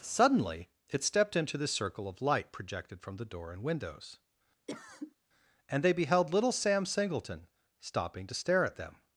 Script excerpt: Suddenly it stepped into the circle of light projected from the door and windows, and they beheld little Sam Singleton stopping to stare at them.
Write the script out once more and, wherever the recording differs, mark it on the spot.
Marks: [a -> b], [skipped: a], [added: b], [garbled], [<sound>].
Suddenly it stepped into the circle of light projected from the door and windows, [cough] and they beheld little Sam Singleton stopping to stare at them.